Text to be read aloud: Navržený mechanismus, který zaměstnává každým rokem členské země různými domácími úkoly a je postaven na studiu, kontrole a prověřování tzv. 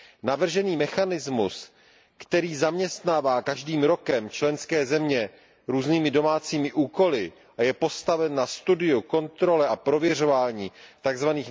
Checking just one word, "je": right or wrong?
right